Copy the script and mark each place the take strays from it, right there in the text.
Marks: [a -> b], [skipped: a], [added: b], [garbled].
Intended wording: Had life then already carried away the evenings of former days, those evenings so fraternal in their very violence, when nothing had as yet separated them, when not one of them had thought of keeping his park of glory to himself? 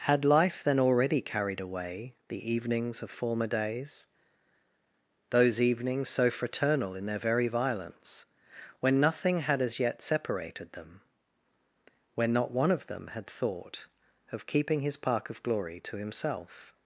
Had life then already carried away the evenings of former days, those evenings so fraternal in their very violence, when nothing had as yet separated them, when not one of them had thought of keeping his park of glory to himself?